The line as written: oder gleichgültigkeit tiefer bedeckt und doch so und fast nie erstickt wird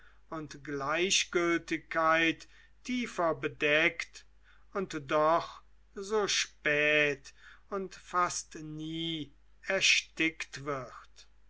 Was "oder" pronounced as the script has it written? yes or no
no